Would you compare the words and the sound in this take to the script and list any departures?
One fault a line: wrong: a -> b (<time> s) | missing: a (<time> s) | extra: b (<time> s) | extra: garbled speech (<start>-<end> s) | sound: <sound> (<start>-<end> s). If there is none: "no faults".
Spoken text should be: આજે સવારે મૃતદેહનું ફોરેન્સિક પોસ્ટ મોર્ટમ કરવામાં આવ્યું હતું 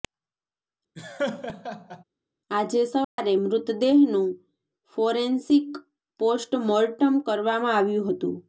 sound: laugh (1.0-2.0 s)
sound: dropout (3.0-3.2 s)